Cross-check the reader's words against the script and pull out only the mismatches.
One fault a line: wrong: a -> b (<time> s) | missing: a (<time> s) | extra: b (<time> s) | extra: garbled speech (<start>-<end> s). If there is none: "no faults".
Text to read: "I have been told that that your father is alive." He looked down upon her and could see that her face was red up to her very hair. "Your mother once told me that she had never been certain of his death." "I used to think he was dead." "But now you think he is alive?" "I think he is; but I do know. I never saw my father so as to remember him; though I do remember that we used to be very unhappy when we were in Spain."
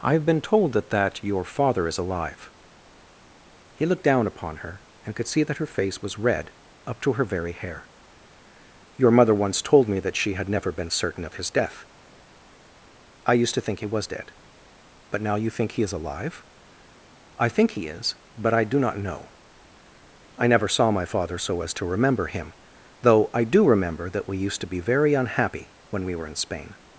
extra: not (18.8 s)